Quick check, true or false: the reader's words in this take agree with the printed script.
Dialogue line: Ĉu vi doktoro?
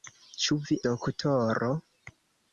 true